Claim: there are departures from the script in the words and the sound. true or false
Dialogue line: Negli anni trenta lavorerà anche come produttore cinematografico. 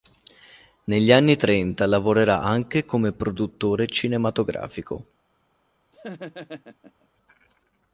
true